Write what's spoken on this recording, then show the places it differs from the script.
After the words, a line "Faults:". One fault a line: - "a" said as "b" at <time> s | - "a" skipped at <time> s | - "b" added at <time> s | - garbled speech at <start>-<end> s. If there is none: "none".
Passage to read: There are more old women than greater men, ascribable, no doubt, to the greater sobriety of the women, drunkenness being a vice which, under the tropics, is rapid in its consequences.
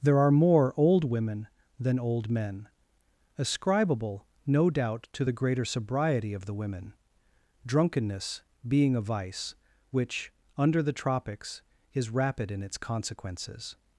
There are more old women than old men, ascribable, no doubt, to the greater sobriety of the women, drunkenness being a vice which, under the tropics, is rapid in its consequences.
Faults:
- "greater" said as "old" at 2.0 s